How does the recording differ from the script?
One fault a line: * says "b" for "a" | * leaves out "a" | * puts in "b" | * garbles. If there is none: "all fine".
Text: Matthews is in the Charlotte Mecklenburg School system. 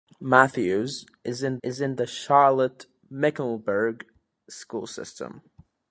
* puts in "is in"